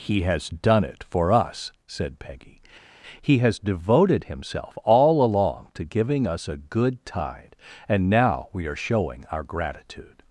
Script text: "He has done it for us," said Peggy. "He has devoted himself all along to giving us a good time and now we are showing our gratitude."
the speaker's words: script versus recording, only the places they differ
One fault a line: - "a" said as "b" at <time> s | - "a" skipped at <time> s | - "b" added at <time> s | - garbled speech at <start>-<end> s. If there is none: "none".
- "time" said as "tide" at 7.0 s